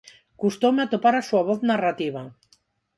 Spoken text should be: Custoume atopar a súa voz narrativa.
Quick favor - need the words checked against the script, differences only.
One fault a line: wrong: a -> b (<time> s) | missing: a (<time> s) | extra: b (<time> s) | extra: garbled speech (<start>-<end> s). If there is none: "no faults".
no faults